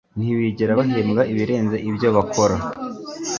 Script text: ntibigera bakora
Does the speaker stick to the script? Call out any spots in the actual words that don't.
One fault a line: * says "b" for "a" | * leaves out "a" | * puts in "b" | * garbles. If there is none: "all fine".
* puts in "bahembwa ibirenze ibyo"